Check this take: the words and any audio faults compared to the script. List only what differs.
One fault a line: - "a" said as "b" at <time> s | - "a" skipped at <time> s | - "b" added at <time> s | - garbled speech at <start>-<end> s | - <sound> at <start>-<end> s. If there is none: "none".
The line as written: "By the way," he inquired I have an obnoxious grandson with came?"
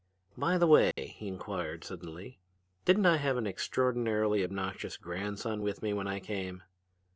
- dropout at 0.9-1.0 s
- "suddenly didn't" added at 1.8 s
- "extraordinarily" added at 3.5 s
- "me when I" added at 5.8 s